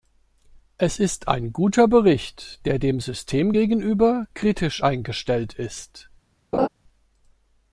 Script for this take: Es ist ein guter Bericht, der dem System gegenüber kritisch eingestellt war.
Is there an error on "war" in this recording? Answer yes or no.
yes